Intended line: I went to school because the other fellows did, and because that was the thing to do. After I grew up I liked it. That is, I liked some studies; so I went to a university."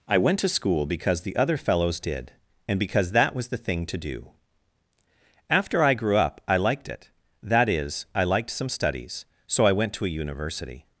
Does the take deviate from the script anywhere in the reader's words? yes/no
no